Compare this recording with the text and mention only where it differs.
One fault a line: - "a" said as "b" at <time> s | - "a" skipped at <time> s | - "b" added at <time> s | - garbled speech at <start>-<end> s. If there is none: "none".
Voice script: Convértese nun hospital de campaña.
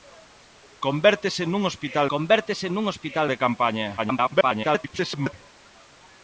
- "convértese nun hospital" added at 2.1 s
- garbled speech at 4.0-5.3 s